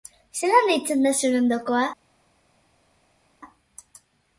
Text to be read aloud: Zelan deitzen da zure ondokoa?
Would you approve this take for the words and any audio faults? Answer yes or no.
yes